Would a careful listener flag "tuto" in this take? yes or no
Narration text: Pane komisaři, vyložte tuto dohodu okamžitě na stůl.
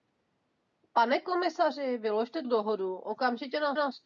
yes